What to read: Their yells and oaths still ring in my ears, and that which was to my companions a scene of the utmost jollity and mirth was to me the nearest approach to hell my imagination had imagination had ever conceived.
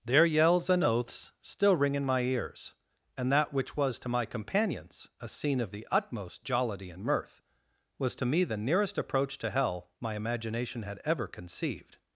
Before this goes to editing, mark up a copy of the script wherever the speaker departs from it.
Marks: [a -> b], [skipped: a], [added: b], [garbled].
Their yells and oaths still ring in my ears, and that which was to my companions a scene of the utmost jollity and mirth was to me the nearest approach to hell my imagination had [skipped: imagination had] ever conceived.